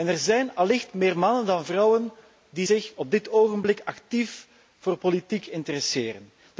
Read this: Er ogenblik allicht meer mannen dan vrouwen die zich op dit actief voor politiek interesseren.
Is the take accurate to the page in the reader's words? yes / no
no